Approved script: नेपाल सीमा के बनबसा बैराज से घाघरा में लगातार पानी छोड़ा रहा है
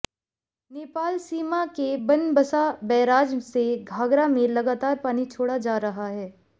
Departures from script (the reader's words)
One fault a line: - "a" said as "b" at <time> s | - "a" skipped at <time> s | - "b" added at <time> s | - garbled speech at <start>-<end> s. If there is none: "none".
- "जा" added at 5.6 s